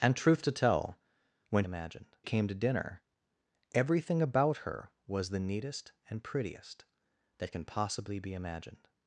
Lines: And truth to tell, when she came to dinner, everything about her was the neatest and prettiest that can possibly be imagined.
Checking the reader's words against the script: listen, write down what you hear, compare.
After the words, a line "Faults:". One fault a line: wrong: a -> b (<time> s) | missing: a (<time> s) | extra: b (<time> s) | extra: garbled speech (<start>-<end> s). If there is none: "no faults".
And truth to tell, when imagined came to dinner, everything about her was the neatest and prettiest that can possibly be imagined.
Faults:
wrong: she -> imagined (1.6 s)